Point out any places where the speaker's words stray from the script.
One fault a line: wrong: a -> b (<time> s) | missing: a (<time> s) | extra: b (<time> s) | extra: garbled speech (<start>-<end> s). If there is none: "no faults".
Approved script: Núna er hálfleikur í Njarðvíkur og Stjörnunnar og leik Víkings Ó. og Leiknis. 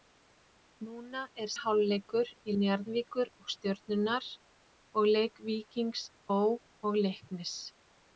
no faults